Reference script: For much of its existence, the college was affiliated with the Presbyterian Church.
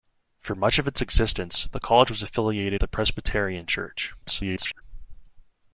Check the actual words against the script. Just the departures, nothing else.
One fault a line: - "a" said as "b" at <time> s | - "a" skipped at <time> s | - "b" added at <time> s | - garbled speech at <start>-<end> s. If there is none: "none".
- "with" skipped at 2.8 s
- garbled speech at 4.2-4.8 s